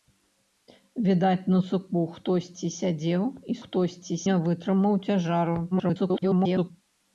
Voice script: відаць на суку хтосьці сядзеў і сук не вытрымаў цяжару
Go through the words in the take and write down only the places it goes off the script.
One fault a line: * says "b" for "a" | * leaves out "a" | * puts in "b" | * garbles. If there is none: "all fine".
* says "хтосьці" for "сук"
* garbles